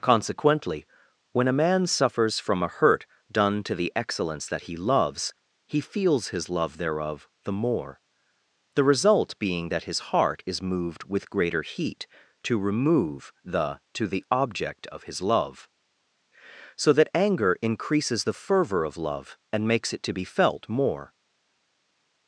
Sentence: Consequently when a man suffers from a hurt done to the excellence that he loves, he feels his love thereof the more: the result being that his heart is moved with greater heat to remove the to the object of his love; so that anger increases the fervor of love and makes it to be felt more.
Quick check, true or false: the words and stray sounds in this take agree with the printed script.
true